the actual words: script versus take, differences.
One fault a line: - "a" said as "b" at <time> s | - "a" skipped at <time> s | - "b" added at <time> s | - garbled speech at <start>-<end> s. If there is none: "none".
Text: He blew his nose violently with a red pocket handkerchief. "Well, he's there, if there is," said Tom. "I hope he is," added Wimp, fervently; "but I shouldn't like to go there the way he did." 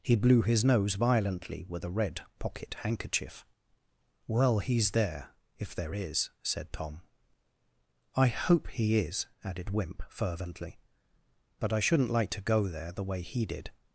none